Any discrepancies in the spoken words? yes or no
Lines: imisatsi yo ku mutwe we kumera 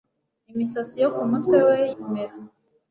no